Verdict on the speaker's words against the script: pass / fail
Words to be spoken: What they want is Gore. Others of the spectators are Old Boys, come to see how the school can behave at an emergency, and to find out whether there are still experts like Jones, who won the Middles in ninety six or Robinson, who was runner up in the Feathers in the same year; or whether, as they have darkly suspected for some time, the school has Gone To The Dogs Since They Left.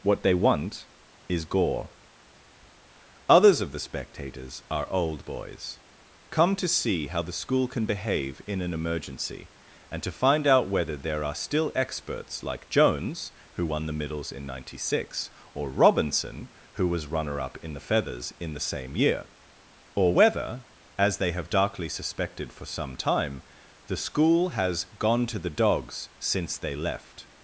fail